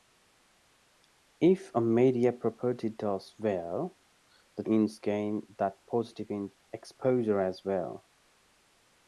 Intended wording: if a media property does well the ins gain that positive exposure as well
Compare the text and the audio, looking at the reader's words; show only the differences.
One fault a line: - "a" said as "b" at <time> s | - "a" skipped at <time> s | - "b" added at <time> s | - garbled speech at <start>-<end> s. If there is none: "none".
none